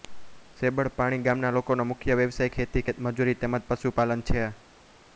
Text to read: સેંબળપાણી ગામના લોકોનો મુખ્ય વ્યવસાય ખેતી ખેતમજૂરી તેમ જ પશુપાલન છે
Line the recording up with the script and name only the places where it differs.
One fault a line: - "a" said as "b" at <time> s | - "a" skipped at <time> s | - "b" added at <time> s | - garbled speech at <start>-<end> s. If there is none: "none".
none